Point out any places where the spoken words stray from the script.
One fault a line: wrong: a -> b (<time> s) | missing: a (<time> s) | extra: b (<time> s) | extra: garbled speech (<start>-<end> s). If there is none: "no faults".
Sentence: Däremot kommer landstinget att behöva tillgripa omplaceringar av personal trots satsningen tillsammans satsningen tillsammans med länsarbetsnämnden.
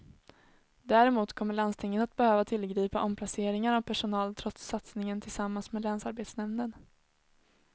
missing: satsningen tillsammans (5.7 s)